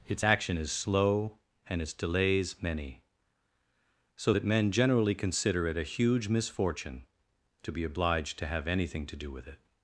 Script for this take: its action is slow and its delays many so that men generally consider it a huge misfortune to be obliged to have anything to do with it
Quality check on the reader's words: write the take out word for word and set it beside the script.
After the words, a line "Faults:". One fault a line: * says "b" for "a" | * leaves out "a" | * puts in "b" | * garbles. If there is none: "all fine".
its action is slow and its delays many so that men generally consider it a huge misfortune to be obliged to have anything to do with it
Faults:
all fine